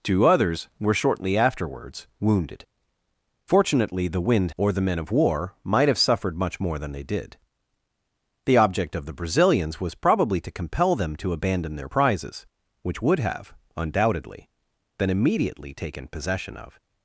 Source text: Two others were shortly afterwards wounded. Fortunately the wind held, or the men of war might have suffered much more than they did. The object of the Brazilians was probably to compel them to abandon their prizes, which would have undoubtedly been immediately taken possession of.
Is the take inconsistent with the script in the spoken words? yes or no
yes